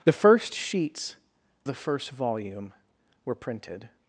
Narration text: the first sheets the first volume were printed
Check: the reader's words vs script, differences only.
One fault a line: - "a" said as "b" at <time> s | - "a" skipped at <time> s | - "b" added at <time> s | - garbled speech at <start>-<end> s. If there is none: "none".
none